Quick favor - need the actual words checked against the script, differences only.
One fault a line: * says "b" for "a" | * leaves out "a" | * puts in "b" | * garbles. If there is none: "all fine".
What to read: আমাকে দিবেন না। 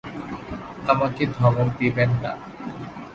* puts in "ধমক"